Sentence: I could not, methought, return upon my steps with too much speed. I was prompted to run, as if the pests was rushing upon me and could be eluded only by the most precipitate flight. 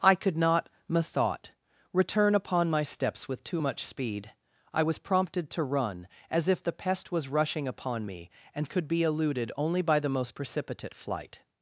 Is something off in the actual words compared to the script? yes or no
yes